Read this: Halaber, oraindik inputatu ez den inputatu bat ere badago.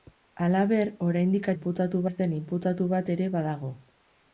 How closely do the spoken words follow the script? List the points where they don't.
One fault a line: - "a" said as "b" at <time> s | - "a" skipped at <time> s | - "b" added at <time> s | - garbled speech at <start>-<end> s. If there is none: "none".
none